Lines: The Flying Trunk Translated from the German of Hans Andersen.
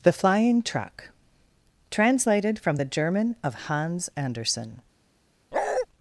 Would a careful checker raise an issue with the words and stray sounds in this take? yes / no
yes